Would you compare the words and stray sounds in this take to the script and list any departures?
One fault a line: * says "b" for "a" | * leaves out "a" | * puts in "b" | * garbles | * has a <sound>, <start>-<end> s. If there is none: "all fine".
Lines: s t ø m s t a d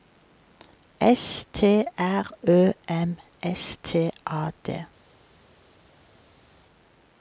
* puts in "r"